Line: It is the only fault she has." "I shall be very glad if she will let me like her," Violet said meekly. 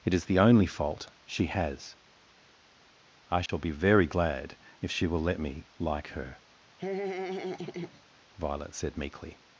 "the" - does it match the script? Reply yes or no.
yes